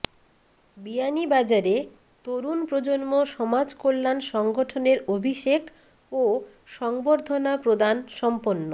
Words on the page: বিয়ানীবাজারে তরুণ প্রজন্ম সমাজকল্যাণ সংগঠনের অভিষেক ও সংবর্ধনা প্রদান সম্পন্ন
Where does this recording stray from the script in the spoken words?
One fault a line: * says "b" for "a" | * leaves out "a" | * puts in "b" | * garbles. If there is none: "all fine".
all fine